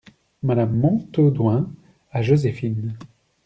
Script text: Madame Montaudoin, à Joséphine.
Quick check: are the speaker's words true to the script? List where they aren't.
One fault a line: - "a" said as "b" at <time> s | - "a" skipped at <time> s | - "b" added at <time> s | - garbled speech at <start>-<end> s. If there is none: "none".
none